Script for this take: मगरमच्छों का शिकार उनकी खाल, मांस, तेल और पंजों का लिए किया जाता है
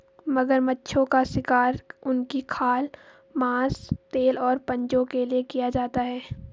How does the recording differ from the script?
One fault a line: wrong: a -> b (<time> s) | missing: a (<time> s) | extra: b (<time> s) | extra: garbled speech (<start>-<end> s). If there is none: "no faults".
wrong: का -> के (5.0 s)